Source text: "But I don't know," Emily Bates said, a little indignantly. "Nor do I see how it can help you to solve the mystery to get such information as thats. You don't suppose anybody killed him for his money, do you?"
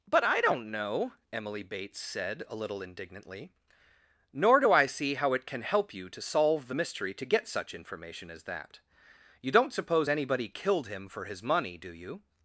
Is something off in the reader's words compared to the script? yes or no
yes